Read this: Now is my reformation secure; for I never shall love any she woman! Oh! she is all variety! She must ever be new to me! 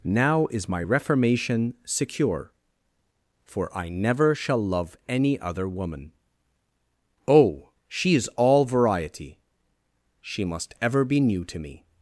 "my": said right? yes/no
yes